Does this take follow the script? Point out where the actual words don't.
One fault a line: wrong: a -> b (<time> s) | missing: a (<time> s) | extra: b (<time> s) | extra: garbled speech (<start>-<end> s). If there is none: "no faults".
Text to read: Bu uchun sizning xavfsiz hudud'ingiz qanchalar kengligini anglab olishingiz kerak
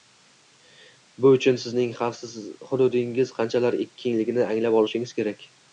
no faults